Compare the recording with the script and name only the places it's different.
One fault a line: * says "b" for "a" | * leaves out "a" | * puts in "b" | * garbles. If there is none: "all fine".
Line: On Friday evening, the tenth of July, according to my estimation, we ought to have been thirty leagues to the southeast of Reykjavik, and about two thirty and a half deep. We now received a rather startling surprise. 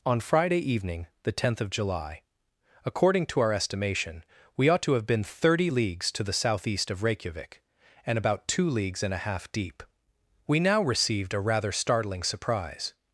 * says "our" for "my"
* says "leagues" for "thirty"